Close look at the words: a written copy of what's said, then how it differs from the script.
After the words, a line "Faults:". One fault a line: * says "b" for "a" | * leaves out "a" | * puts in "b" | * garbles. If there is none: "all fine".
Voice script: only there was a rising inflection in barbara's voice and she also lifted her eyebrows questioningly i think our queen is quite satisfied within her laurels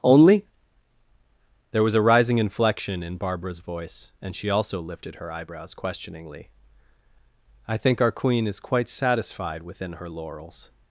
only there was a rising inflection in barbara's voice and she also lifted her eyebrows questioningly i think our queen is quite satisfied within her laurels
Faults:
all fine